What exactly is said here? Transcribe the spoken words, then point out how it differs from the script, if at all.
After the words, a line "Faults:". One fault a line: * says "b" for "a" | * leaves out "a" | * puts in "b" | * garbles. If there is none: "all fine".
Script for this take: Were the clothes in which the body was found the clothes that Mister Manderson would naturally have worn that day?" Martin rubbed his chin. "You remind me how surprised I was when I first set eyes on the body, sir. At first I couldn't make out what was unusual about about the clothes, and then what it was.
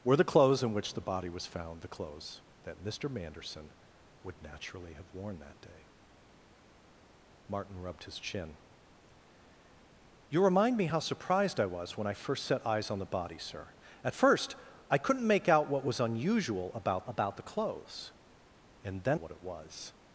Were the clothes in which the body was found the clothes that Mister Manderson would naturally have worn that day?" Martin rubbed his chin. "You remind me how surprised I was when I first set eyes on the body, sir. At first I couldn't make out what was unusual about about the clothes, and then what it was.
Faults:
all fine